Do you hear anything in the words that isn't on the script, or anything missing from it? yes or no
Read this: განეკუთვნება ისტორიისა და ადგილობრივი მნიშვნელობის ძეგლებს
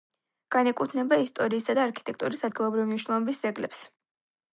yes